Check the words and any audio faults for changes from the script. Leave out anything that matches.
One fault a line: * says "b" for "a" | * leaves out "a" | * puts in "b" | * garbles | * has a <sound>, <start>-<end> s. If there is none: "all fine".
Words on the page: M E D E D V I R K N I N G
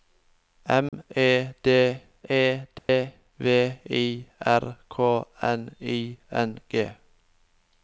* has a dropout, 0.9-0.9 s
* has a dropout, 2.8-2.9 s